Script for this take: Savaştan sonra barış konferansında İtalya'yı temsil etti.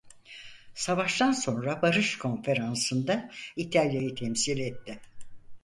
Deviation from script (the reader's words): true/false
false